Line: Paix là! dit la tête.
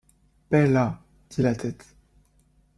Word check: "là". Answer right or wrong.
right